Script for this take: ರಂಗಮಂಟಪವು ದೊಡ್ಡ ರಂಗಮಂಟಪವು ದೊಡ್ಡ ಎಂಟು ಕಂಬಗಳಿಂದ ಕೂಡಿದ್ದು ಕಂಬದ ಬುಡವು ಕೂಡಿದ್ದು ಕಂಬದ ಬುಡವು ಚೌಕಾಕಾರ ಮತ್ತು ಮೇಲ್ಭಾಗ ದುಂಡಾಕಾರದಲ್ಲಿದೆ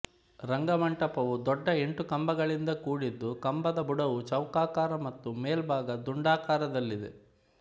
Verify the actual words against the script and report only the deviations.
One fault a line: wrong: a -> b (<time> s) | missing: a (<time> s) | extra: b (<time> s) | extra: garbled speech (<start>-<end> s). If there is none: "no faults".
missing: ರಂಗಮಂಟಪವು ದೊಡ್ಡ (1.7 s)
missing: ಕೂಡಿದ್ದು ಕಂಬದ ಬುಡವು (4.2 s)